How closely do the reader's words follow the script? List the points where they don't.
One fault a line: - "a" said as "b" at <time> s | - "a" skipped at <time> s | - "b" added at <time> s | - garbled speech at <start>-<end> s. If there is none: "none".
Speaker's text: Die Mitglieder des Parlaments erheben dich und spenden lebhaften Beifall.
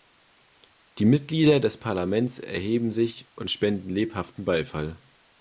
- "dich" said as "sich" at 2.9 s